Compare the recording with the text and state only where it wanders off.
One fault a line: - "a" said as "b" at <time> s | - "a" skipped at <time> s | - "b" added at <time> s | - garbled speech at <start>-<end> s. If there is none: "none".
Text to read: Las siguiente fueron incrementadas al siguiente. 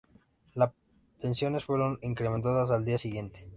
- "siguiente" said as "pensiones" at 1.2 s
- "día" added at 2.9 s